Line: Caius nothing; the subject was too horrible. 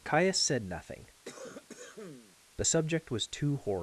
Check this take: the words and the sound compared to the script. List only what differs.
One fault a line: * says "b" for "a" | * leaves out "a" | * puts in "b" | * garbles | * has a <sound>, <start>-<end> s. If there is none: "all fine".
* puts in "said"
* has a cough, 1.2-2.4 s